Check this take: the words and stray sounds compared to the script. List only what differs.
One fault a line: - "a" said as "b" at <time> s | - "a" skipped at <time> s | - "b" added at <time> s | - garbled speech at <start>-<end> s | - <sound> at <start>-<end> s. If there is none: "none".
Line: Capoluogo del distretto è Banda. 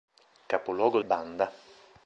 - "del distretto è" skipped at 1.0 s